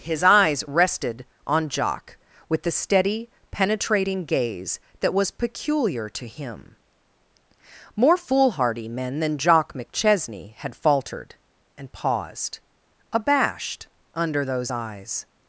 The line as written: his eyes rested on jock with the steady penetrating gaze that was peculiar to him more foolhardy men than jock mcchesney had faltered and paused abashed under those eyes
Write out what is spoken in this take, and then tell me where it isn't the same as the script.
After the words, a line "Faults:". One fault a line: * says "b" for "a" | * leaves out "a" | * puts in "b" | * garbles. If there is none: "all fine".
his eyes rested on jock with the steady penetrating gaze that was peculiar to him more foolhardy men than jock mcchesney had faltered and paused abashed under those eyes
Faults:
all fine